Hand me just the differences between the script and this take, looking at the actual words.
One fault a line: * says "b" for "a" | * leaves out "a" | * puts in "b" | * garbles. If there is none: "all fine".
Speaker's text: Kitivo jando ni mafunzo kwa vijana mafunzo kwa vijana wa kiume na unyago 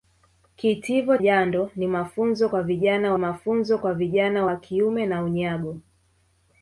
all fine